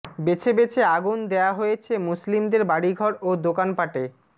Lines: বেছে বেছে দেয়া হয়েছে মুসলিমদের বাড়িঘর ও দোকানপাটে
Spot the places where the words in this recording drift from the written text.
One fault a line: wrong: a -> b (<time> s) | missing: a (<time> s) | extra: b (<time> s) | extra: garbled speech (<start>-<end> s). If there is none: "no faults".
extra: আগুন (0.9 s)